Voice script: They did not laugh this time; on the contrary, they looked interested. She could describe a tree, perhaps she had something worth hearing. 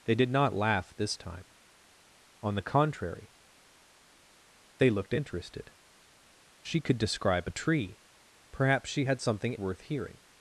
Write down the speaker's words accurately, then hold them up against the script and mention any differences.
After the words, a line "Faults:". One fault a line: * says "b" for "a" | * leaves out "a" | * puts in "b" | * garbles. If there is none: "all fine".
They did not laugh this time; on the contrary, they looked interested. She could describe a tree, perhaps she had something worth hearing.
Faults:
all fine